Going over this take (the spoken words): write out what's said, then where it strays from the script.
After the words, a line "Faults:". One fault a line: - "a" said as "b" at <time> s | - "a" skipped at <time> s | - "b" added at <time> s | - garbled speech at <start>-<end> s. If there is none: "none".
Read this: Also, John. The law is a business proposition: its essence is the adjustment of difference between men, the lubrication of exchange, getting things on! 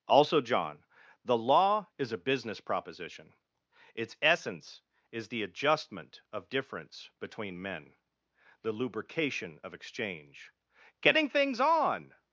Also, John. The law is a business proposition: its essence is the adjustment of difference between men, the lubrication of exchange, getting things on!
Faults:
none